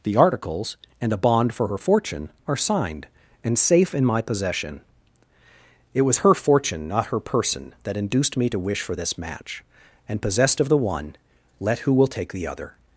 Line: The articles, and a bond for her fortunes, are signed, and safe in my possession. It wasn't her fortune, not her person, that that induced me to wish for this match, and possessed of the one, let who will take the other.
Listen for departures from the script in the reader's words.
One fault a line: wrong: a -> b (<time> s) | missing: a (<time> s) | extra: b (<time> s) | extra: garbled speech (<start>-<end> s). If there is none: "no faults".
wrong: fortunes -> fortune (1.8 s)
wrong: wasn't -> was (6.0 s)
missing: that (8.0 s)